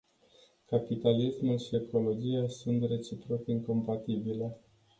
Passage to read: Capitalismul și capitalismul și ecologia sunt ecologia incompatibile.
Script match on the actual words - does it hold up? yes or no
no